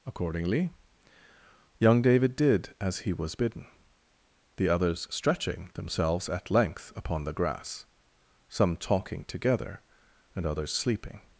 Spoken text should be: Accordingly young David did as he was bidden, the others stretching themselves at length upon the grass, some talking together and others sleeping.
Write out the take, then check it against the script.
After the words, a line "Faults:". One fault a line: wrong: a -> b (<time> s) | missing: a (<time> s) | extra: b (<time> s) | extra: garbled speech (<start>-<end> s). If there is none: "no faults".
Accordingly young David did as he was bidden, the others stretching themselves at length upon the grass, some talking together and others sleeping.
Faults:
no faults